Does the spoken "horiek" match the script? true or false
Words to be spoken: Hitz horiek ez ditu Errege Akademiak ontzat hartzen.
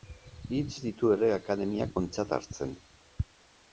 false